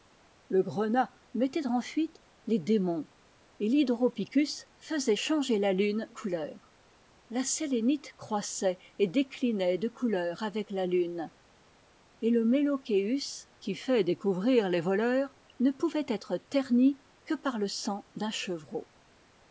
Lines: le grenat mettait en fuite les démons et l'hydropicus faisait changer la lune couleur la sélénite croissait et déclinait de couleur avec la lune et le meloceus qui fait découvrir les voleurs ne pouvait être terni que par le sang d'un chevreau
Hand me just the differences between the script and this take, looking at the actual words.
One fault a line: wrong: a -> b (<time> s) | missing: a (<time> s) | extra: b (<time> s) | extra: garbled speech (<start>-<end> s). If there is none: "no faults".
no faults